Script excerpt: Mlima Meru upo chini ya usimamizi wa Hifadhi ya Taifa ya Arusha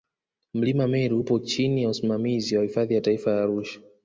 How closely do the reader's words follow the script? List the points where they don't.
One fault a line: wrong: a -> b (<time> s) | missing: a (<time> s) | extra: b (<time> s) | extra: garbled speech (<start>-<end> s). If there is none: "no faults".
no faults